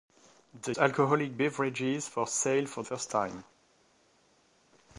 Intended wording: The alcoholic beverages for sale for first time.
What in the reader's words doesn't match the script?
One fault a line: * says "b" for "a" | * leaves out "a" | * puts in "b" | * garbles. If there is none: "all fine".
all fine